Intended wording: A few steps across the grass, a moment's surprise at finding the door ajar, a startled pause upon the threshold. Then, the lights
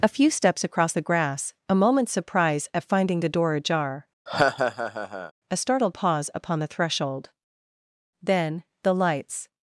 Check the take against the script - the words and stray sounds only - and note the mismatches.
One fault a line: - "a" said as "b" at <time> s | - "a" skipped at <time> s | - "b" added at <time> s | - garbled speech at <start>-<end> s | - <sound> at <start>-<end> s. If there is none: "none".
- laugh at 4.3-5.3 s